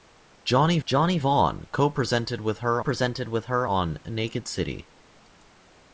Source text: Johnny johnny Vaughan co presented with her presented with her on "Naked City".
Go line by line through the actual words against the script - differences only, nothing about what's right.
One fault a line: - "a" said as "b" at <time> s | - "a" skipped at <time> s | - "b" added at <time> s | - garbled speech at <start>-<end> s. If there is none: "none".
none